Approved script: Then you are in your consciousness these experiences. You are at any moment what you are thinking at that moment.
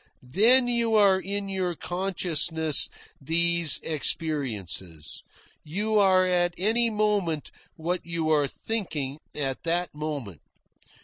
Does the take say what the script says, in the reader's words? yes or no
yes